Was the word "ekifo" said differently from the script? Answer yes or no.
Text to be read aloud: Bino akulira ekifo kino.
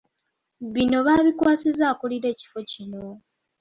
no